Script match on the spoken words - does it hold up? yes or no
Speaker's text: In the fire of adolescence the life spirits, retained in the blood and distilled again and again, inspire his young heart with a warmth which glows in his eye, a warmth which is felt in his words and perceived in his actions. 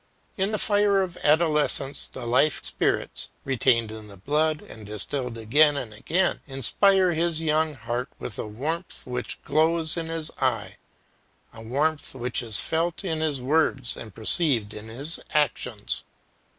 yes